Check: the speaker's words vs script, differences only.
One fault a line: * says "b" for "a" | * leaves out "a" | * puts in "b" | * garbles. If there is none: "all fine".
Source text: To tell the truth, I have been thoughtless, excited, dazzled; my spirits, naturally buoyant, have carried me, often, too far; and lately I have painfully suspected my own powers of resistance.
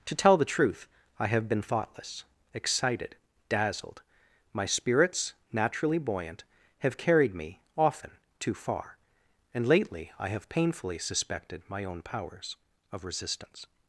all fine